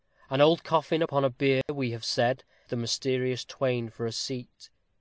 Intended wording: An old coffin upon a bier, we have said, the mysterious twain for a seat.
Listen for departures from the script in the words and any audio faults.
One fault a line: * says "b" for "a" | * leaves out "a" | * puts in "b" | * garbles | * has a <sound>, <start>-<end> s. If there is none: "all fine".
* has a dropout, 1.6-1.7 s